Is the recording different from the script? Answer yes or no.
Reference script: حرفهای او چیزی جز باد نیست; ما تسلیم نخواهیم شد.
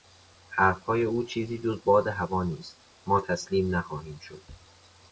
yes